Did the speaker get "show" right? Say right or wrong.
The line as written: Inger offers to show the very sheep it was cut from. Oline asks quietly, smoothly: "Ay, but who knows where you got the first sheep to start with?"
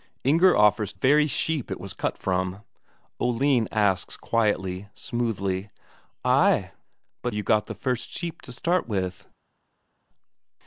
wrong